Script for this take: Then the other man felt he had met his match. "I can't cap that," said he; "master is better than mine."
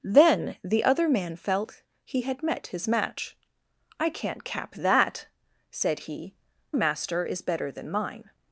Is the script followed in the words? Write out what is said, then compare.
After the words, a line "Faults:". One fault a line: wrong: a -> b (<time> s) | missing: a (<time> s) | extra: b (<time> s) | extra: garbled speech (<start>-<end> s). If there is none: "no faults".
Then the other man felt he had met his match. "I can't cap that," said he; "master is better than mine."
Faults:
no faults